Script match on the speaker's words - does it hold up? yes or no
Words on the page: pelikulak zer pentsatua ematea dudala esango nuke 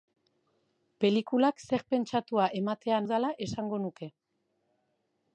yes